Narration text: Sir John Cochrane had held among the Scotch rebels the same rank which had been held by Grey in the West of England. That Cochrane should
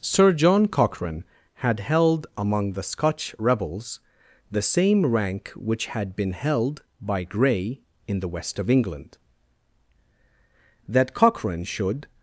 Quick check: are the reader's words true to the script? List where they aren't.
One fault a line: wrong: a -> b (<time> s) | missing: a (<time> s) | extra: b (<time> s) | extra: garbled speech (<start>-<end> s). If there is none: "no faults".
no faults